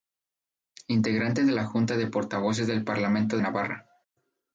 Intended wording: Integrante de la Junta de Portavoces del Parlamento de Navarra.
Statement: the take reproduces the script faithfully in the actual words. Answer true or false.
false